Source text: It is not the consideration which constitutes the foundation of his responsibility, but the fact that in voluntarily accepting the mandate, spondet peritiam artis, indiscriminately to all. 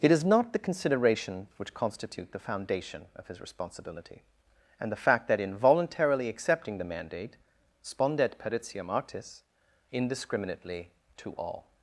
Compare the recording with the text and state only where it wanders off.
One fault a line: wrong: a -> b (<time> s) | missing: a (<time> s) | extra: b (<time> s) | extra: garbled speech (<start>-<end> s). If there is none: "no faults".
wrong: constitutes -> constitute (1.8 s)
wrong: but -> and (4.8 s)